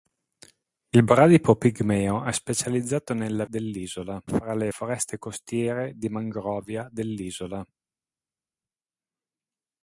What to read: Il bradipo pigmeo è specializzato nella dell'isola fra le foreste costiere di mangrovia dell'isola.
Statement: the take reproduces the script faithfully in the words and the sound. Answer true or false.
true